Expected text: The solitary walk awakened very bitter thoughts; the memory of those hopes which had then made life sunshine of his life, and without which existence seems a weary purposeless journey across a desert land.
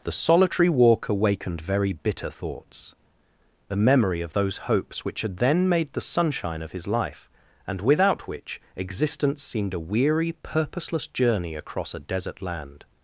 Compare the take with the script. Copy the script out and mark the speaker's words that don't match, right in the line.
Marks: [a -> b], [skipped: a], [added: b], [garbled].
The solitary walk awakened very bitter thoughts; the memory of those hopes which had then made [life -> the] sunshine of his life, and without which existence [seems -> seemed] a weary purposeless journey across a desert land.